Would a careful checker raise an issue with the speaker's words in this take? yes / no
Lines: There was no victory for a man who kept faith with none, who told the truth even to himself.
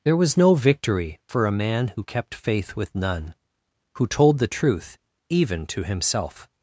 no